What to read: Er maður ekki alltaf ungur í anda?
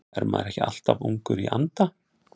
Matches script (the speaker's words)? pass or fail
pass